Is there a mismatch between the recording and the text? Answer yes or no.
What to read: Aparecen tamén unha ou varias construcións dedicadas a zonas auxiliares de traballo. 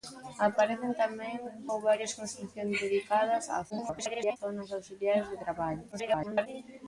yes